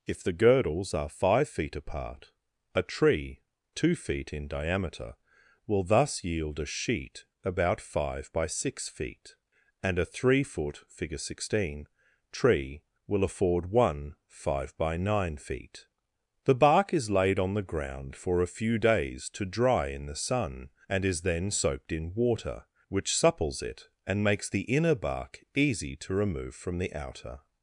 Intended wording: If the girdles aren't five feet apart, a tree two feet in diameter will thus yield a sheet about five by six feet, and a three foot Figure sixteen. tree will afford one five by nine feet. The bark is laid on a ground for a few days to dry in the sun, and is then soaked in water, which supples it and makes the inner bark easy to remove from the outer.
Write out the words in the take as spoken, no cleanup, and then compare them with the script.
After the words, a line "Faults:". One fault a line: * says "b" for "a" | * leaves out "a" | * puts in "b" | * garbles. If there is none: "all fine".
If the girdles are five feet apart, a tree two feet in diameter will thus yield a sheet about five by six feet, and a three foot Figure sixteen. tree will afford one five by nine feet. The bark is laid on the ground for a few days to dry in the sun, and is then soaked in water, which supples it and makes the inner bark easy to remove from the outer.
Faults:
* says "are" for "aren't"
* says "the" for "a"